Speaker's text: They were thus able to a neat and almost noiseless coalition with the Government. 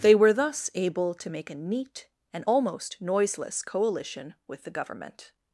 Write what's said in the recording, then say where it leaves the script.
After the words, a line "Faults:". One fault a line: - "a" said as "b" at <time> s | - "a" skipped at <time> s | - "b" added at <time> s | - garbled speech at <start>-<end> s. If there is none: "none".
They were thus able to make a neat and almost noiseless coalition with the Government.
Faults:
- "make" added at 1.3 s